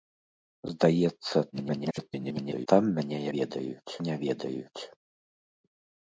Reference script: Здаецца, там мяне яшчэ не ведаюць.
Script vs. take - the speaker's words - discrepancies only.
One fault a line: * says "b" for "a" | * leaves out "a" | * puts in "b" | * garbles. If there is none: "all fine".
* garbles
* says "ведаюць" for "яшчэ"